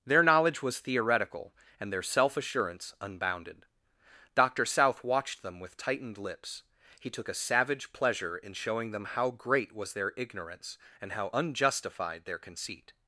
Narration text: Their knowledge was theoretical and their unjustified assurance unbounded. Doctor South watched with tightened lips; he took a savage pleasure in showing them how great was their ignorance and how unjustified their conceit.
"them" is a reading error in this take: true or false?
false